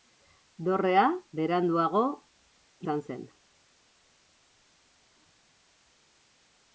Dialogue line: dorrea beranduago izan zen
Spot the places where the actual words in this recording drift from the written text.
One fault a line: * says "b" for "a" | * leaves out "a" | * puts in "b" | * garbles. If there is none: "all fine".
all fine